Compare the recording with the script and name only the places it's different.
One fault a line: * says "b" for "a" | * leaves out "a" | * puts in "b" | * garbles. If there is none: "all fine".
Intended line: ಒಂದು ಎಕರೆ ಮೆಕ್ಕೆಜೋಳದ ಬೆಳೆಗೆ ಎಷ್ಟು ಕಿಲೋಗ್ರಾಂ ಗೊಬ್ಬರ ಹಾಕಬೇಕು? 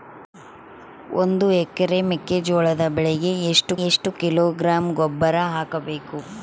* puts in "ಎಷ್ಟು"